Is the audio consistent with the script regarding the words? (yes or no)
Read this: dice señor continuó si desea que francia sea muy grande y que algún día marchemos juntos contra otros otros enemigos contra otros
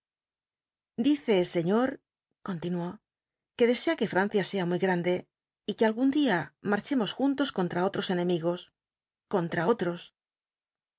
no